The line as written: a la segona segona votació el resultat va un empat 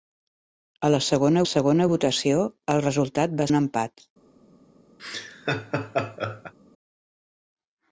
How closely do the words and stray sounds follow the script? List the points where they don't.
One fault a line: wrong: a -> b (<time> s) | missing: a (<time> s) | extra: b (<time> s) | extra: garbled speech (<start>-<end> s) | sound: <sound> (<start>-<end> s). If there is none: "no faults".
sound: laugh (5.0-6.5 s)